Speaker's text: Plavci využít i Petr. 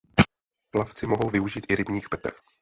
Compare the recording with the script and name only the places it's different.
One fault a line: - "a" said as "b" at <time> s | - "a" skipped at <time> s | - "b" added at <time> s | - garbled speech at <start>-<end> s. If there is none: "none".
- "mohou" added at 1.1 s
- "rybník" added at 1.8 s